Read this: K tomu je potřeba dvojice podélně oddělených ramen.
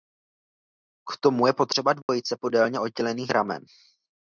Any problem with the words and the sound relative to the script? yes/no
yes